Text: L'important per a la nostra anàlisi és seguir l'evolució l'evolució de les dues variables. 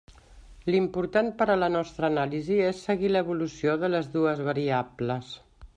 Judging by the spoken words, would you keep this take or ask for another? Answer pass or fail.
fail